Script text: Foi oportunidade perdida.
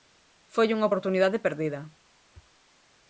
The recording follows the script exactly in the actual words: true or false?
false